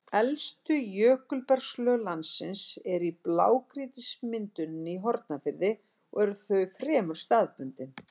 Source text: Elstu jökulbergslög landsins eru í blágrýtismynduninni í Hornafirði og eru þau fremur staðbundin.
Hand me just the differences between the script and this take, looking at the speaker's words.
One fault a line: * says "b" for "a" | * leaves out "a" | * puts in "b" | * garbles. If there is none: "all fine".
all fine